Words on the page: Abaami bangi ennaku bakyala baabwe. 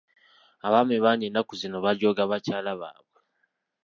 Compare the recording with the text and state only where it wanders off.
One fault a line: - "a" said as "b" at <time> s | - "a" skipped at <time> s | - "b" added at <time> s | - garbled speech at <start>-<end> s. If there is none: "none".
- "zino bajooga" added at 1.6 s